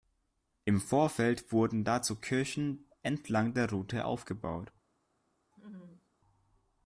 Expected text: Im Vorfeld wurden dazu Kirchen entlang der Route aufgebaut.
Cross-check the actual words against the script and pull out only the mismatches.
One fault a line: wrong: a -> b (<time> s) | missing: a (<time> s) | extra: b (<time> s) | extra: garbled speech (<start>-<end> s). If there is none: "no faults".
no faults